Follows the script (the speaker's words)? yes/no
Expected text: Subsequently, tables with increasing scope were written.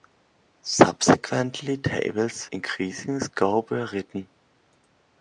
no